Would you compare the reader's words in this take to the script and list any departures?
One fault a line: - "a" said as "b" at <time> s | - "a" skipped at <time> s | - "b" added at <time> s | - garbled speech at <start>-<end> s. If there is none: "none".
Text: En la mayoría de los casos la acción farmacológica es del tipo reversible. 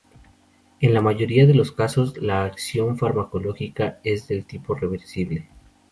none